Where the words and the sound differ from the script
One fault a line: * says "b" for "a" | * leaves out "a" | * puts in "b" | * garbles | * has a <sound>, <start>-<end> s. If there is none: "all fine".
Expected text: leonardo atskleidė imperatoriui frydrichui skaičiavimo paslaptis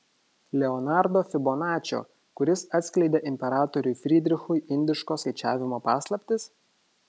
* puts in "fibonačio kuris"
* puts in "indiško"